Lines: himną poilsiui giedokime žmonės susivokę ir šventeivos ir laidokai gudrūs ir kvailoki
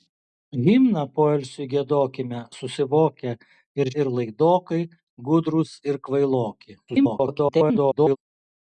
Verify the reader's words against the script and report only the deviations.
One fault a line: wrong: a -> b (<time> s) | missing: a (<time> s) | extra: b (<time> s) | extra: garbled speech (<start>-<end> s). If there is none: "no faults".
missing: žmonės (2.4 s)
missing: šventeivos (3.9 s)
extra: garbled speech (6.9-8.2 s)